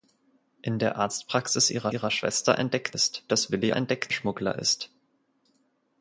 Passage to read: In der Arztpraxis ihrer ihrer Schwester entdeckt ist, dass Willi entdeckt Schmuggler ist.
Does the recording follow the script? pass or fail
pass